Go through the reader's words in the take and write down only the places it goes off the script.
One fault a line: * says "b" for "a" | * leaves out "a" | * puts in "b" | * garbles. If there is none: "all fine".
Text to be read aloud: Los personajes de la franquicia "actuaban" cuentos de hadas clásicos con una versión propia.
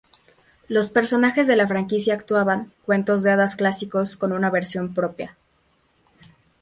all fine